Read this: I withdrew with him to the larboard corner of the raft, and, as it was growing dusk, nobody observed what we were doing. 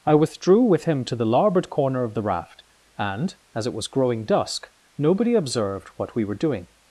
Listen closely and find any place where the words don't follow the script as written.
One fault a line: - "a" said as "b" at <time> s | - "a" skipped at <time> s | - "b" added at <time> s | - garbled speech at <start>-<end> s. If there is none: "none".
none